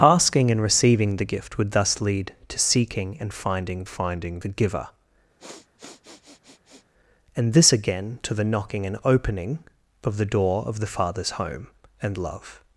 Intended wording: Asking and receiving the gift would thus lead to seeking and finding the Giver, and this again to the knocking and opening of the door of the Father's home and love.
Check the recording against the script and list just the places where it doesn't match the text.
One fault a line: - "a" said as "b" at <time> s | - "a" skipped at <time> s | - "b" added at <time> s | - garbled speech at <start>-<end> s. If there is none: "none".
- "finding" added at 3.8 s